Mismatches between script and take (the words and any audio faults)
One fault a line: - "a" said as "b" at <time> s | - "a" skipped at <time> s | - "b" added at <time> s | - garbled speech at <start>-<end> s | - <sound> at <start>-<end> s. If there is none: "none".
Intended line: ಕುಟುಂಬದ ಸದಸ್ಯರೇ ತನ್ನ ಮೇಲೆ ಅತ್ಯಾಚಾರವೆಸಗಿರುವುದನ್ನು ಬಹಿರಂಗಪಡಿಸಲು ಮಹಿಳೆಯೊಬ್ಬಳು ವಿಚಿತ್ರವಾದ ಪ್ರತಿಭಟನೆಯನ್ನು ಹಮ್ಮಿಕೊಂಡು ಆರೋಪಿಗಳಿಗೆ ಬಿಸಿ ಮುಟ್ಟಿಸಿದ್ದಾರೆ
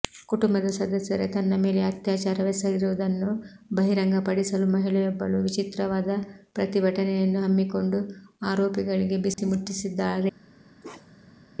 - dropout at 9.3-9.4 s
- bark at 10.8-11.4 s